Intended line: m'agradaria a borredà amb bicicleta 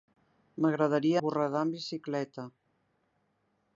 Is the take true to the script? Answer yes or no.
yes